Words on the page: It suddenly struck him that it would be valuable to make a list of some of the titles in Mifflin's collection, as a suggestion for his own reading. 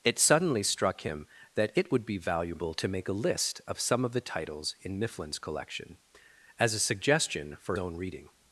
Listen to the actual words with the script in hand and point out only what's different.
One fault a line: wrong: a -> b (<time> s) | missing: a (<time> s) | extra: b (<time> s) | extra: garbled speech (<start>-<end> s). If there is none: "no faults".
missing: his (7.8 s)